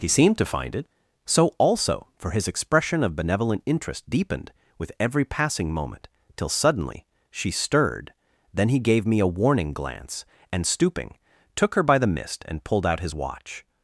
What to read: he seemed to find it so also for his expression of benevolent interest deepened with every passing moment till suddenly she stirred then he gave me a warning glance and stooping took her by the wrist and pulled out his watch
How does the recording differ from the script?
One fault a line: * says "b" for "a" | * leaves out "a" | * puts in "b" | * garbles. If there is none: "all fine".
* says "mist" for "wrist"